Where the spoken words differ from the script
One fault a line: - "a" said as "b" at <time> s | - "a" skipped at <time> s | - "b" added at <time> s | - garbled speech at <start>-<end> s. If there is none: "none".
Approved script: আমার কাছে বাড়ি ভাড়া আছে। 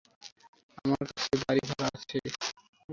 none